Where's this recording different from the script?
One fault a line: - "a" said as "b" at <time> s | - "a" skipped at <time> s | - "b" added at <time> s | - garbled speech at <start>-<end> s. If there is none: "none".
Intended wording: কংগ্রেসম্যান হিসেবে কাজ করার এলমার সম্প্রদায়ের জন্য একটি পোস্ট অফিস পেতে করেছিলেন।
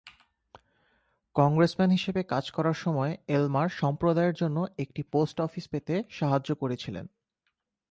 - "সময়" added at 2.8 s
- "সাহায্য" added at 6.1 s